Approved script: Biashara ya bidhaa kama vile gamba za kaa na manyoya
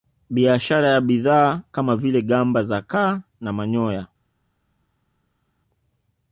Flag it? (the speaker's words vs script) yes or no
no